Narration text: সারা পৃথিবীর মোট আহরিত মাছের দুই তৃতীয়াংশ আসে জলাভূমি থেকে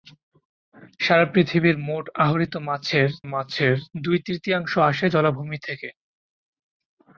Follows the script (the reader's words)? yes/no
no